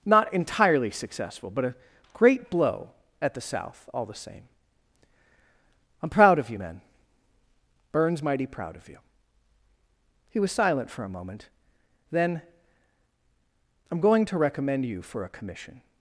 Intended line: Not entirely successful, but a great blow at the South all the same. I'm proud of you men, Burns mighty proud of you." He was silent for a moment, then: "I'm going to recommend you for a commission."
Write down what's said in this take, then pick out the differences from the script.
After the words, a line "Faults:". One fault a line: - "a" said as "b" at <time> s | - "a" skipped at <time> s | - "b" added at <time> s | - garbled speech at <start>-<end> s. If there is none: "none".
Not entirely successful, but a great blow at the South all the same. I'm proud of you men, Burns mighty proud of you." He was silent for a moment, then: "I'm going to recommend you for a commission."
Faults:
none